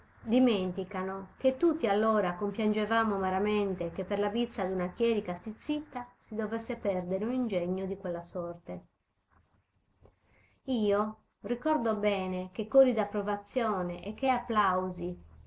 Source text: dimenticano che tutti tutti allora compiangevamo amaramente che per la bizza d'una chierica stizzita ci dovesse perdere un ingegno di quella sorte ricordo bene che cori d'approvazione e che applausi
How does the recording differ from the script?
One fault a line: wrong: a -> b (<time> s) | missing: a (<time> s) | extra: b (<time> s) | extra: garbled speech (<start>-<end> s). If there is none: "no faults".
missing: tutti (1.9 s)
wrong: ci -> si (6.2 s)
extra: io (10.6 s)